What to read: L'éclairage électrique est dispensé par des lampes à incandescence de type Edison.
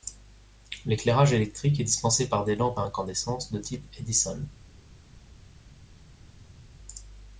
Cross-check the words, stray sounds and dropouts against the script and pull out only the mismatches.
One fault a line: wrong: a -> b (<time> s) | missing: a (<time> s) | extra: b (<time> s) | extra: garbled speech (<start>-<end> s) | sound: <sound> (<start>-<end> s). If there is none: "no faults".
no faults